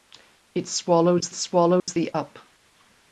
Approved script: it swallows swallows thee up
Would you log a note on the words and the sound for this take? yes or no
yes